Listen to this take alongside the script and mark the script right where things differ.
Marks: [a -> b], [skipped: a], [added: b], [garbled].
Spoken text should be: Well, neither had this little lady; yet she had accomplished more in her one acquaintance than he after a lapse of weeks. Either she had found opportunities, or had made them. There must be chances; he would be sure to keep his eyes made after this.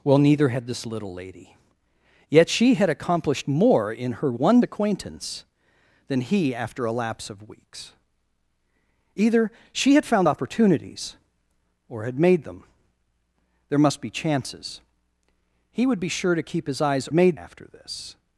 Well, neither had this little lady; yet she had accomplished more in her one acquaintance than he after a lapse of weeks. Either she had found opportunities, or had made them. There must be chances; he would be sure to keep his eyes made after this.